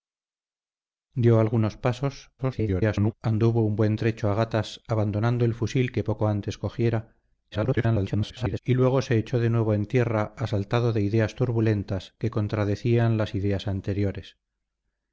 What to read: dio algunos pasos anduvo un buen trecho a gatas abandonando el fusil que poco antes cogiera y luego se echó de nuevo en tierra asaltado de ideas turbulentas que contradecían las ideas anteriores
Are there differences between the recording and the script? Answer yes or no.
yes